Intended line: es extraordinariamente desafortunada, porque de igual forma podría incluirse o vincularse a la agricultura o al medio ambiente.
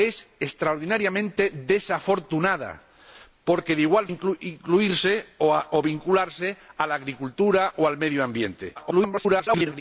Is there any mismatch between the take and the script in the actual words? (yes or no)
yes